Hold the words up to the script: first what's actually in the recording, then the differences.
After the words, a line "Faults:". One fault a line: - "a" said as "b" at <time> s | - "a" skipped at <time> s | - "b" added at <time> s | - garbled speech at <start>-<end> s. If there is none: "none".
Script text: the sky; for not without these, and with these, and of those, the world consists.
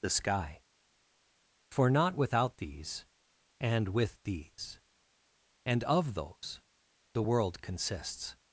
the sky; for not without these, and with these, and of those, the world consists.
Faults:
none